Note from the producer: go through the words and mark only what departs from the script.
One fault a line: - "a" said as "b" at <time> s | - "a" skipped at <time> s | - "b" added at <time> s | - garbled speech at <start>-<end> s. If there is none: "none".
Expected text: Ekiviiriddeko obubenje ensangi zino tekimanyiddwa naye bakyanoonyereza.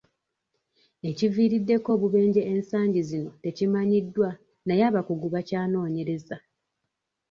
- "abakugu" added at 4.9 s